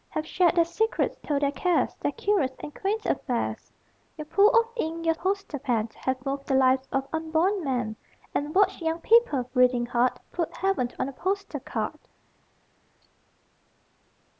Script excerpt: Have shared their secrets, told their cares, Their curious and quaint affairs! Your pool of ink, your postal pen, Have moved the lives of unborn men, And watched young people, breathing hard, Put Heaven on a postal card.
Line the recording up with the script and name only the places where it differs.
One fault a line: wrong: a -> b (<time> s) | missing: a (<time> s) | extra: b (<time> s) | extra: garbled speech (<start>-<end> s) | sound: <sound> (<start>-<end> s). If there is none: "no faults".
no faults